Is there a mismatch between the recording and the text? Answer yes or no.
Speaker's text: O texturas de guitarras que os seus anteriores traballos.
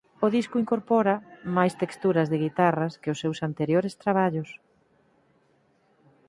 yes